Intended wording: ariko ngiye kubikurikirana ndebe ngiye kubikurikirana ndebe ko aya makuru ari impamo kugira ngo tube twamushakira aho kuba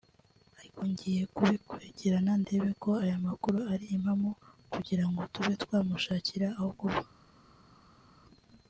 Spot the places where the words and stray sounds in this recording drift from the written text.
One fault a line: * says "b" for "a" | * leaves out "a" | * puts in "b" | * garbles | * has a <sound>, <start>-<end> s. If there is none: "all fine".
* leaves out "ngiye kubikurikirana ndebe"